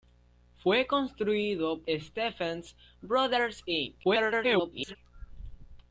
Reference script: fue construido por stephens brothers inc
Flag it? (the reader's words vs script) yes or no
yes